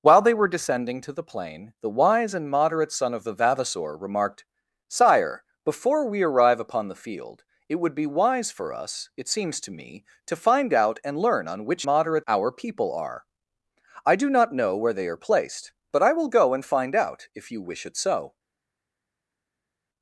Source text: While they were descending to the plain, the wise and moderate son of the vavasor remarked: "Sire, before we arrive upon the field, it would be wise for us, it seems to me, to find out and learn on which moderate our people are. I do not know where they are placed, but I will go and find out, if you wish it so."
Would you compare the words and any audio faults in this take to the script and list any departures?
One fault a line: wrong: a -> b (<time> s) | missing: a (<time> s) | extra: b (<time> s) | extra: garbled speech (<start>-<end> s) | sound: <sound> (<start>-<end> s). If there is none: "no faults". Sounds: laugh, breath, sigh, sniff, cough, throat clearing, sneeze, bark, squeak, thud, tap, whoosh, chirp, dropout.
no faults